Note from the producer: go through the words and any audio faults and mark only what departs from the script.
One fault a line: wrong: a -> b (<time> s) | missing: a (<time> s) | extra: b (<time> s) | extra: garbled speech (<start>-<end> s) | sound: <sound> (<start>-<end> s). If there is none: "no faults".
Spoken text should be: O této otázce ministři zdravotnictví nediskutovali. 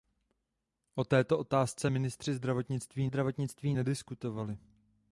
extra: zdravotnictví (3.1 s)